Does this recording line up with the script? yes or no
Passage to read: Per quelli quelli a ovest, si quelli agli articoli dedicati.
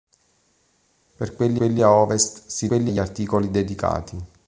yes